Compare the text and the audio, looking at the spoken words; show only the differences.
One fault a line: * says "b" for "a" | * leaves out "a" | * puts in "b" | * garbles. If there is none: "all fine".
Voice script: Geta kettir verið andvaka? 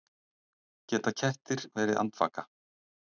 all fine